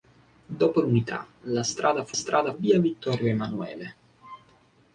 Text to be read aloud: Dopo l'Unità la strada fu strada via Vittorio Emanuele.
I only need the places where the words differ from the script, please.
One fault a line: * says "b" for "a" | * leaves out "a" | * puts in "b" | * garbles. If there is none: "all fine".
all fine